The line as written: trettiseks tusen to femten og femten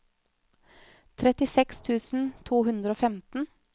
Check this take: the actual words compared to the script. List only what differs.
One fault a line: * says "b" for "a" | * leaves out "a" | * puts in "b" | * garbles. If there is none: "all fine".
* says "hundre" for "femten"